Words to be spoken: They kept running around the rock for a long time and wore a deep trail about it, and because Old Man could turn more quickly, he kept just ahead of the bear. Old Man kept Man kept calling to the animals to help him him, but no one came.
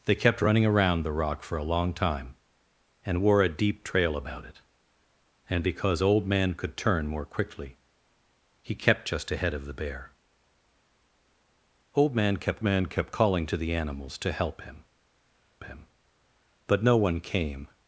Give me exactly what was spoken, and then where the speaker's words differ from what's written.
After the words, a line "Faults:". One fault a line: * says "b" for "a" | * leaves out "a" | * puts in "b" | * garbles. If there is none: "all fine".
They kept running around the rock for a long time and wore a deep trail about it, and because Old Man could turn more quickly, he kept just ahead of the bear. Old Man kept Man kept calling to the animals to help him him, but no one came.
Faults:
all fine